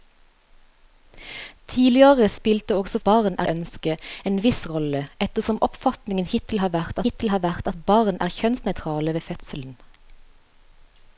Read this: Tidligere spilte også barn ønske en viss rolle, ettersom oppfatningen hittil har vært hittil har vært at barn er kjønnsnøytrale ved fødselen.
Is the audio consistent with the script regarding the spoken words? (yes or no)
yes